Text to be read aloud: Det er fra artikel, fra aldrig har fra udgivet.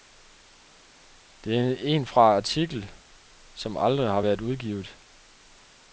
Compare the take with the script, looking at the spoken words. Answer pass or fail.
fail